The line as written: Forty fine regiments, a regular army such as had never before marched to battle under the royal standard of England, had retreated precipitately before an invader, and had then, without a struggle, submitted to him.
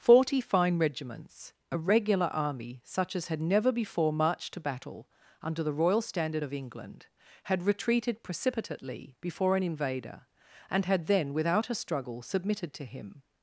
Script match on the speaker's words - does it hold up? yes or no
yes